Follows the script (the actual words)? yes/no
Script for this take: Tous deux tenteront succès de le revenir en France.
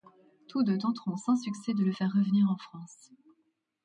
no